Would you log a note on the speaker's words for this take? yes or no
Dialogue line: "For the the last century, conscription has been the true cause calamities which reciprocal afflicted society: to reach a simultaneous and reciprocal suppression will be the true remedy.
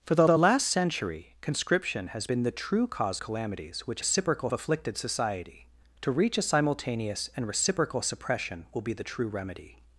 no